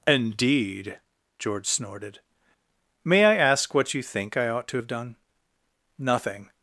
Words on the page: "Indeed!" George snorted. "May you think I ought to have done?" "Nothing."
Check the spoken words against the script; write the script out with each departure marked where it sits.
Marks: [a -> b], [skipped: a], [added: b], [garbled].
"Indeed!" George snorted. "May [added: I ask what] you think I ought to have done?" "Nothing."